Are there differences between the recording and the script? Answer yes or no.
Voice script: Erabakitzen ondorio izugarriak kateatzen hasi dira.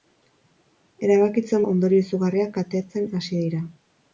no